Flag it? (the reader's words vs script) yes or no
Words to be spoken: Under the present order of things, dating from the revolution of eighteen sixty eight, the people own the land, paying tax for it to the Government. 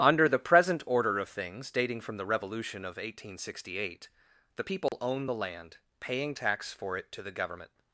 no